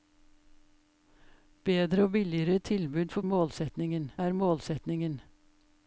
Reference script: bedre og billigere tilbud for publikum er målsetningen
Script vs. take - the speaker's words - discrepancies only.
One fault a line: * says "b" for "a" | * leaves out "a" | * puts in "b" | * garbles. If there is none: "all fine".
* says "målsetningen" for "publikum"